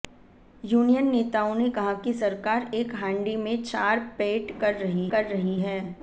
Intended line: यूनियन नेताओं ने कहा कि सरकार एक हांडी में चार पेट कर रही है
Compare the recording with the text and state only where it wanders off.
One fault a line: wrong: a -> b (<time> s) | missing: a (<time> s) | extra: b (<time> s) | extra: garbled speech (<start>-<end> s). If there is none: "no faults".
extra: कर रही (5.1 s)